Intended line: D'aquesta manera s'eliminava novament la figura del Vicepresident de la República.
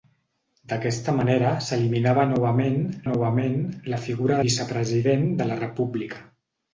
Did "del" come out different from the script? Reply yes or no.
yes